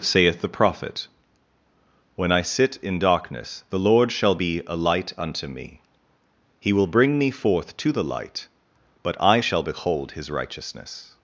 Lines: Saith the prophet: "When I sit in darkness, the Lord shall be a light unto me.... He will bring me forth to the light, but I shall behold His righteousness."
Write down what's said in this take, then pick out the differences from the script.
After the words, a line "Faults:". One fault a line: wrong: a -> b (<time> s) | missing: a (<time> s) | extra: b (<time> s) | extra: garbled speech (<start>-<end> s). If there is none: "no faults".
Saith the prophet: "When I sit in darkness, the Lord shall be a light unto me.... He will bring me forth to the light, but I shall behold His righteousness."
Faults:
no faults